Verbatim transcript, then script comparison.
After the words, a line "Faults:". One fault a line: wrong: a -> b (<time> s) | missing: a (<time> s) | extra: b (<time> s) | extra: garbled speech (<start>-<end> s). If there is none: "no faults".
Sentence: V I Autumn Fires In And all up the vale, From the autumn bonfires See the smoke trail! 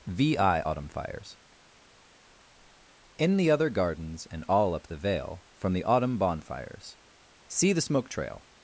V I Autumn Fires In the other gardens And all up the vale, From the autumn bonfires See the smoke trail!
Faults:
extra: the other gardens (3.4 s)